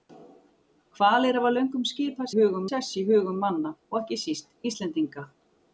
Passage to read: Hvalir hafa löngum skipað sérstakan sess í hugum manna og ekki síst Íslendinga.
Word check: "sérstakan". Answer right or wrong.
wrong